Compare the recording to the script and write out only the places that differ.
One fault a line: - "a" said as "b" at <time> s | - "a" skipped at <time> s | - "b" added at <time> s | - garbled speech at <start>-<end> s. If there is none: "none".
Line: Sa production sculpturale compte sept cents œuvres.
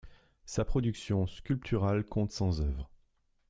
- "sept" skipped at 2.3 s